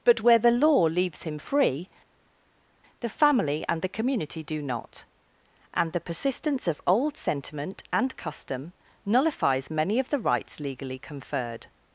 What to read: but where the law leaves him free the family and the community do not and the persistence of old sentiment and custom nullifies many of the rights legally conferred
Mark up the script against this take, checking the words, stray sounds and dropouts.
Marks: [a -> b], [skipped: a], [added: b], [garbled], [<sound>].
but where the law leaves him free the family and the community do not and the persistence of old sentiment and custom nullifies many of the rights legally conferred